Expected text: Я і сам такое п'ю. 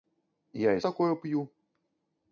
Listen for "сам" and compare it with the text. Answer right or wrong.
wrong